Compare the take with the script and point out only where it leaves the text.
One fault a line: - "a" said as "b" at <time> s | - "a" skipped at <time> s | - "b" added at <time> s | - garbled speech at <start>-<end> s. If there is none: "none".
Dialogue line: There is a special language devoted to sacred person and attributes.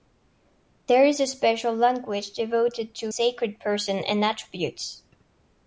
none